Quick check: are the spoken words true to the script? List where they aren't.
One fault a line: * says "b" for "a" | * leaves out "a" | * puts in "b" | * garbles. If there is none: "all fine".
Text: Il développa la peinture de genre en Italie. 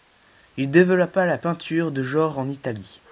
all fine